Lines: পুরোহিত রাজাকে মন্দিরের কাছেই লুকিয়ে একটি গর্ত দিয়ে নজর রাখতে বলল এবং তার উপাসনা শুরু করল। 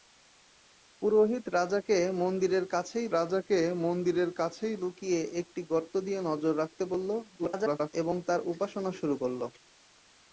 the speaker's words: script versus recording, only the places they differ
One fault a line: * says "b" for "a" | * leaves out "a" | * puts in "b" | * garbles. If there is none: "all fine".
* puts in "রাজাকে মন্দিরের কাছেই"
* garbles